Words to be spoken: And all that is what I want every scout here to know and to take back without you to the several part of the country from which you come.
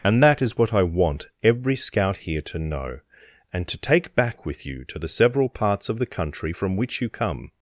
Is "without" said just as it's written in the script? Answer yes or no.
no